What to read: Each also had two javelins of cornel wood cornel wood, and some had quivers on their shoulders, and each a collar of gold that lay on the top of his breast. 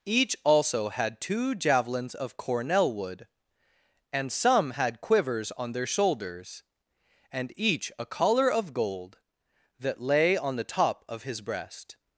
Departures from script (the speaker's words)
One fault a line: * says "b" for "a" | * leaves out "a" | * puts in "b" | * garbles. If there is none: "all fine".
* leaves out "cornel wood"